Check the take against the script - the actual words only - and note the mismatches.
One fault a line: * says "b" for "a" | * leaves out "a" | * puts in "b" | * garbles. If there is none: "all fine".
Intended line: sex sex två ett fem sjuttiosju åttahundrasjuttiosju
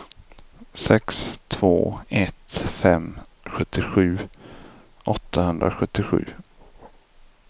* leaves out "sex"